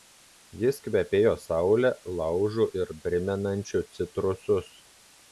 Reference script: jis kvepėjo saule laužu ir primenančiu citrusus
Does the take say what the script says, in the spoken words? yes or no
yes